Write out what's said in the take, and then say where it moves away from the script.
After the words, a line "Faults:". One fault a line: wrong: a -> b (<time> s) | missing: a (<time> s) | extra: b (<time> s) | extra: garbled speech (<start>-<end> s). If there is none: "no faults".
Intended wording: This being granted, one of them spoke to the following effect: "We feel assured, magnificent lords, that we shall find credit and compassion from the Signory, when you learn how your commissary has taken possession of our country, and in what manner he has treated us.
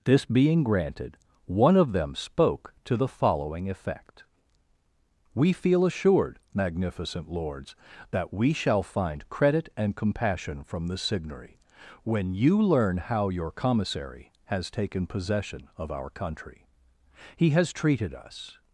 This being granted, one of them spoke to the following effect: "We feel assured, magnificent lords, that we shall find credit and compassion from the Signory, when you learn how your commissary has taken possession of our country, he has treated us.
Faults:
missing: and in what manner (16.6 s)